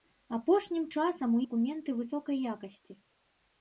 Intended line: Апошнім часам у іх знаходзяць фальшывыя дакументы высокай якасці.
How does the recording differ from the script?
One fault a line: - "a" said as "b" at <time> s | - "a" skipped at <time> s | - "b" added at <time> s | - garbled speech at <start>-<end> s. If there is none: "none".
- "іх знаходзяць фальшывыя" skipped at 1.4 s